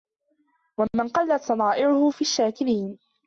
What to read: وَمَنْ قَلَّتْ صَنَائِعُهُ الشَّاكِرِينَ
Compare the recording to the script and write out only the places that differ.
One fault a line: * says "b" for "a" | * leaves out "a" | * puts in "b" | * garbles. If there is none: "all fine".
* puts in "فِي"